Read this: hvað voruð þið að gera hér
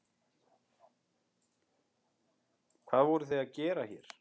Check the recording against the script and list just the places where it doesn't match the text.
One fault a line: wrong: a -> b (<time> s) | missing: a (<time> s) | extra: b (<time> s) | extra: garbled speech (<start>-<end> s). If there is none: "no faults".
no faults